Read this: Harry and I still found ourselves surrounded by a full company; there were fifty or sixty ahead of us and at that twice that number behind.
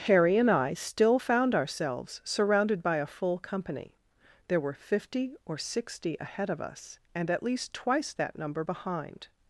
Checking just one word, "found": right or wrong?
right